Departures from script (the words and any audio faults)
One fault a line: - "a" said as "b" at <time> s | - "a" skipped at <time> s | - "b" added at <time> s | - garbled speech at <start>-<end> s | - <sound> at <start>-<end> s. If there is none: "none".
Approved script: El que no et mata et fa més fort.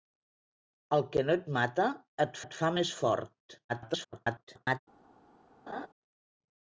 - "et" added at 2.5 s
- garbled speech at 3.7-4.8 s
- laugh at 5.7-5.9 s